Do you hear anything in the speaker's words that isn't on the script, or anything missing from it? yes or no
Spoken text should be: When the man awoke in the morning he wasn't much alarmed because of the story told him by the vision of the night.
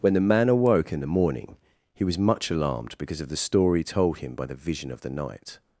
yes